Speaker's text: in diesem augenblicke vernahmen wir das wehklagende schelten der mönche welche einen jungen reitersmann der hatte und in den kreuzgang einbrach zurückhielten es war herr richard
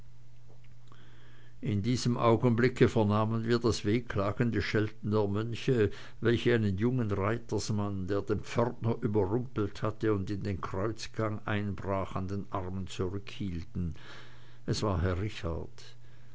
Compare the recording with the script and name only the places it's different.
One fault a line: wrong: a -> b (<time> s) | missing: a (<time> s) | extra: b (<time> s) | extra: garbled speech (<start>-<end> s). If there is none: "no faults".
extra: den pförtner überrumpelt (8.2 s)
extra: an den armen (12.1 s)